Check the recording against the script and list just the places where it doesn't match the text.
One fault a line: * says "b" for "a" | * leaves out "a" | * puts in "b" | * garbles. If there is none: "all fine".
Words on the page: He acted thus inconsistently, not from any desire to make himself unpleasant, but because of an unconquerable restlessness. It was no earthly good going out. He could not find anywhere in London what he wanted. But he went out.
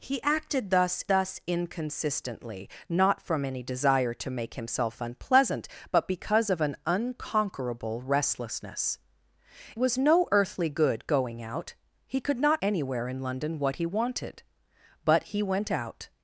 * puts in "thus"
* leaves out "It"
* leaves out "find"